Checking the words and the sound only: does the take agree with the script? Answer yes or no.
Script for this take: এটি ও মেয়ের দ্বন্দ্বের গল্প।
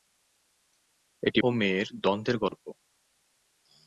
no